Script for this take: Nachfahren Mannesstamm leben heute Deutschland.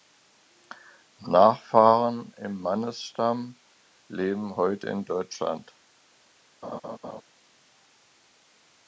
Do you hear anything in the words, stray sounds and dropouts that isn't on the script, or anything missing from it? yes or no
yes